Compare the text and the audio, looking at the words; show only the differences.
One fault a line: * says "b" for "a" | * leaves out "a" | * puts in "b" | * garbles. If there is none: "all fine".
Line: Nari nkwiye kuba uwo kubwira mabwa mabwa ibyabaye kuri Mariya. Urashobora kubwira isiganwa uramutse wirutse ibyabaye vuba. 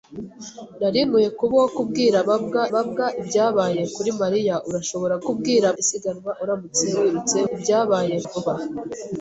all fine